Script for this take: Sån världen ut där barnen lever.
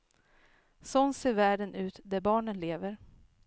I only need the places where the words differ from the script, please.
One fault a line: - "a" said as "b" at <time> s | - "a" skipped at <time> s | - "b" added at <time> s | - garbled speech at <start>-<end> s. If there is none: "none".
- "ser" added at 1.1 s